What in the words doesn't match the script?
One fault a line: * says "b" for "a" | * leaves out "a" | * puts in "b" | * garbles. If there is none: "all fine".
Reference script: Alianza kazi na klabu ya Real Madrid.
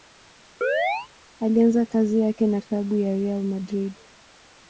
* puts in "yake"